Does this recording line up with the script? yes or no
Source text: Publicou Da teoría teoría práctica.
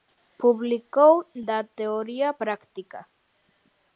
no